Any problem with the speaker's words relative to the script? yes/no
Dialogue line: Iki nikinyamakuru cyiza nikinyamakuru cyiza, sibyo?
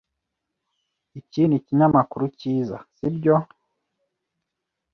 yes